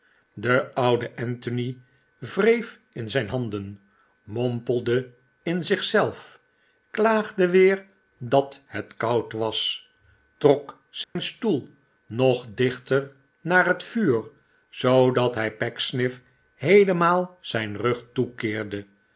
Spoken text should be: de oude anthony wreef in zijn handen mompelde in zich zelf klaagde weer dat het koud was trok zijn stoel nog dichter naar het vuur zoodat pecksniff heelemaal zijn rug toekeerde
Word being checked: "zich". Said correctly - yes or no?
yes